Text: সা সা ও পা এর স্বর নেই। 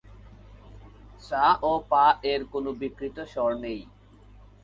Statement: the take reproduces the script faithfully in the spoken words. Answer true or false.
false